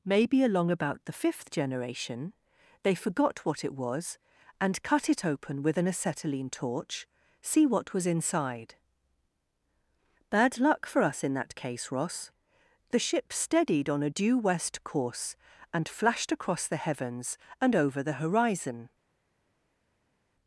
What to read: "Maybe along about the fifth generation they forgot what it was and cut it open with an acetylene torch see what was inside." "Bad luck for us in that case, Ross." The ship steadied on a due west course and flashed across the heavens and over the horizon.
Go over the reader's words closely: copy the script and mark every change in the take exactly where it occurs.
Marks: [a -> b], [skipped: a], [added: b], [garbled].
"Maybe along about the fifth generation they forgot what it was and cut it open with an acetylene torch see what was inside." "Bad luck for us in that case, Ross." The ship steadied on a due west course and flashed across the heavens and over the horizon.